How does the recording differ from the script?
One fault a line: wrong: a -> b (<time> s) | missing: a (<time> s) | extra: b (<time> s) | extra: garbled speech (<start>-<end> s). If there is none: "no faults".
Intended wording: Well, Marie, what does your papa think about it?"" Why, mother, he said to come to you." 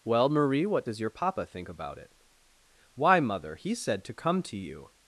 no faults